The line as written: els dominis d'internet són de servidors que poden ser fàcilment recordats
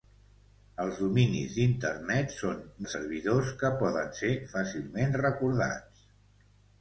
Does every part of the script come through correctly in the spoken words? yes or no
yes